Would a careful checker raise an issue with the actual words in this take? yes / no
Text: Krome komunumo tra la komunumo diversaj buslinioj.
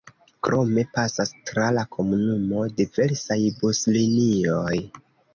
yes